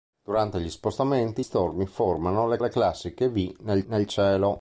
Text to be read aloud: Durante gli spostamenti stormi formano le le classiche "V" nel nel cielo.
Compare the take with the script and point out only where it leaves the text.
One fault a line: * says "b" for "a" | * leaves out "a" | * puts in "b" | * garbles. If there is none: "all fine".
all fine